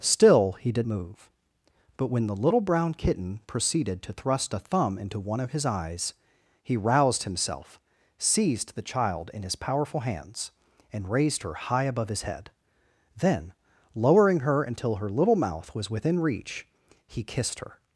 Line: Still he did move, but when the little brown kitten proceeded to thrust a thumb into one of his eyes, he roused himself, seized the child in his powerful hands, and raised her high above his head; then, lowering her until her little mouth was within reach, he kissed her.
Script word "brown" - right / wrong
right